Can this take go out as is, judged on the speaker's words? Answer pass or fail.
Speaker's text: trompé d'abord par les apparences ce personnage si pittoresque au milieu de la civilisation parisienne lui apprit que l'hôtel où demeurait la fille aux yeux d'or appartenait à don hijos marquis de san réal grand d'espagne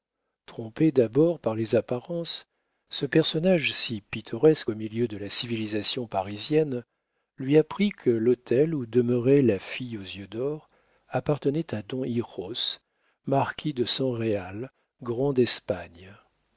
pass